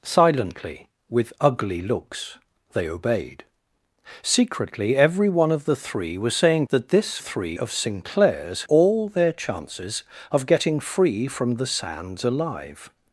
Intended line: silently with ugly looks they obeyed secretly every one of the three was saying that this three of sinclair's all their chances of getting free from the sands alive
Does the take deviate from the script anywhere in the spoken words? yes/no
no